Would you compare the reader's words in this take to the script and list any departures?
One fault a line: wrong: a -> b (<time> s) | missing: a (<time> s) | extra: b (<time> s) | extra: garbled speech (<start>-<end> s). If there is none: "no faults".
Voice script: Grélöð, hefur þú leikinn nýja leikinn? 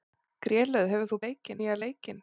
no faults